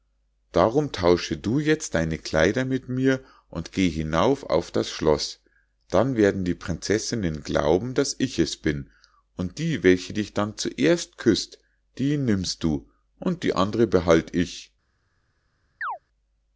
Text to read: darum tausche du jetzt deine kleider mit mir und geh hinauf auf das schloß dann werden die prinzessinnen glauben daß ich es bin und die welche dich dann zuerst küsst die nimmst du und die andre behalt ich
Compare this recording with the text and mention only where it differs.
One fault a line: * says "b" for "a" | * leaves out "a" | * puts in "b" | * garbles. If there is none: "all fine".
all fine